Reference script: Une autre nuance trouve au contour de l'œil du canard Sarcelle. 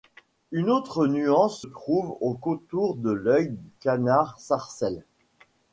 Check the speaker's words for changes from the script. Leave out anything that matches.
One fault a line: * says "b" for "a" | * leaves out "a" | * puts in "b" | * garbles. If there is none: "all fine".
all fine